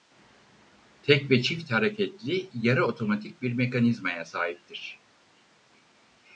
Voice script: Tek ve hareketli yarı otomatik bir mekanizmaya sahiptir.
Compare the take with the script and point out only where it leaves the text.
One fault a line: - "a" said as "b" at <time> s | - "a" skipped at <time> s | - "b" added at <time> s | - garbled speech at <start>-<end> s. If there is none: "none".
- "çift" added at 1.4 s